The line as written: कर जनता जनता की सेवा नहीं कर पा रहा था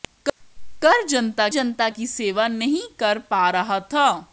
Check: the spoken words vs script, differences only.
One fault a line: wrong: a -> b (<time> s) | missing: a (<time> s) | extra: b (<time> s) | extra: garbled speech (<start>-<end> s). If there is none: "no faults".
no faults